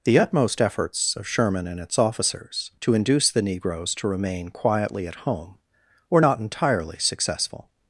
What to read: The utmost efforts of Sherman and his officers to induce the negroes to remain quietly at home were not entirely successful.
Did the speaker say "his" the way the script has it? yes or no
no